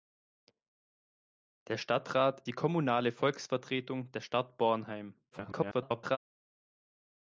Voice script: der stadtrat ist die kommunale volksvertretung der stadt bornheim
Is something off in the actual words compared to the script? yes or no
yes